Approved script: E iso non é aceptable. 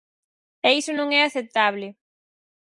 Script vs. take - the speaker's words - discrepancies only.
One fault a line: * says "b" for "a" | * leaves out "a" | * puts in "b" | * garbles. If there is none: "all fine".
all fine